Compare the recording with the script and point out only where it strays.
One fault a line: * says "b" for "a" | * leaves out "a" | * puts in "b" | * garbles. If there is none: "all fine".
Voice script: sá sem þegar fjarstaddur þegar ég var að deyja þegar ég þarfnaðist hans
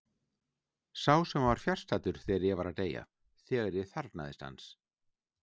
* says "var" for "þegar"